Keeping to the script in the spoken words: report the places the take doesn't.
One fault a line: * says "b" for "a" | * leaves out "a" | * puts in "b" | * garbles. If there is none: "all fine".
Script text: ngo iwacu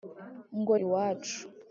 all fine